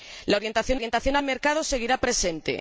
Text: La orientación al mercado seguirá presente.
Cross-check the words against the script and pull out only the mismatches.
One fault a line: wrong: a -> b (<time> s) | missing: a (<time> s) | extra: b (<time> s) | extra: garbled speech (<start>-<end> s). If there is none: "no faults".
extra: orientación (0.8 s)